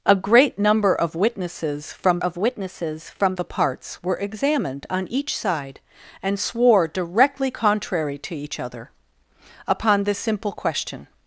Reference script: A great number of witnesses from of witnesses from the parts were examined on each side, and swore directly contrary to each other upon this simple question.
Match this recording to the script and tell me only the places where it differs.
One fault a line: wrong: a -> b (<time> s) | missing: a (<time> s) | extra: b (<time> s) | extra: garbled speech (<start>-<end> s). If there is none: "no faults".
no faults